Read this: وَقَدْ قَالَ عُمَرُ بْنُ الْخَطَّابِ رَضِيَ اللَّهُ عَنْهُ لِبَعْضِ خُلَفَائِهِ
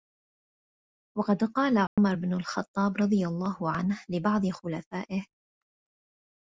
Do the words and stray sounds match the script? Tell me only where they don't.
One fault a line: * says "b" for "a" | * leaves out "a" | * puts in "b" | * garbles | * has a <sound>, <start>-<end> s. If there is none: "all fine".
* has a dropout, 1.9-2.0 s